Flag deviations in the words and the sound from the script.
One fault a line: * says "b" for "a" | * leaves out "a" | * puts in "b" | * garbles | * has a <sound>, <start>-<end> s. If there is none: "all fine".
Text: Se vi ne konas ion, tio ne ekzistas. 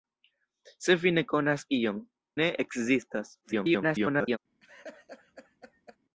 * leaves out "tio"
* garbles
* has a laugh, 4.6-6.0 s